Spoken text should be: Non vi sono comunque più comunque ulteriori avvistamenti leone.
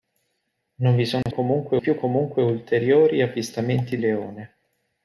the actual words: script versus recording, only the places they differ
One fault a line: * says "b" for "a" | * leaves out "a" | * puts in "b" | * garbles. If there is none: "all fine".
all fine